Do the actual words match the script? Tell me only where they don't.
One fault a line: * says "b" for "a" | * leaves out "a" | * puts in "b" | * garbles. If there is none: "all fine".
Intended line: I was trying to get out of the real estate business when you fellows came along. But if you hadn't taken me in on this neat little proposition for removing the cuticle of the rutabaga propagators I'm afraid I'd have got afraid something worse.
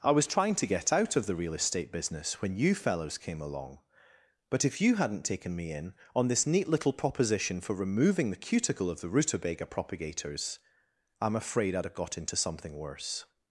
* says "into" for "afraid"